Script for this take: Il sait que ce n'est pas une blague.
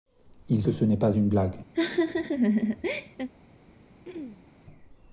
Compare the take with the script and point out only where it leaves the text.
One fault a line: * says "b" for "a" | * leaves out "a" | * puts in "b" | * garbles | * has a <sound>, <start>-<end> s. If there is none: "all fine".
* leaves out "sait"
* has a laugh, 1.7-3.3 s
* has a throat clearing, 4.0-4.5 s